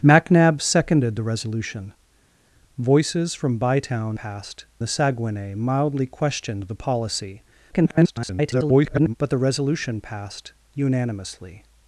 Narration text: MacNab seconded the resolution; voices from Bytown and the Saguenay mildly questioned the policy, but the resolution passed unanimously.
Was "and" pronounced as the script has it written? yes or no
no